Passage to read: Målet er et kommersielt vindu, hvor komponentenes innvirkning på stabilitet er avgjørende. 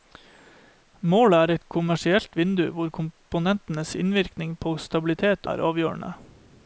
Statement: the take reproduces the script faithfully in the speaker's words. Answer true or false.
true